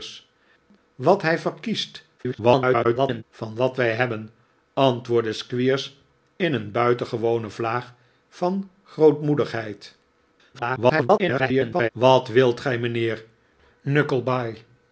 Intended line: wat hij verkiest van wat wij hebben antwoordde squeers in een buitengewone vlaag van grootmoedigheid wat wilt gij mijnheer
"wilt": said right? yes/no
yes